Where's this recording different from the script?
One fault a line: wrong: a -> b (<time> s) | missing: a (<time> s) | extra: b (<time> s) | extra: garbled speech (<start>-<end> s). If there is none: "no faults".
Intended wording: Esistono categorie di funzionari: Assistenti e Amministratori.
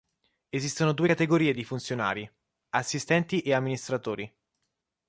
extra: due (0.9 s)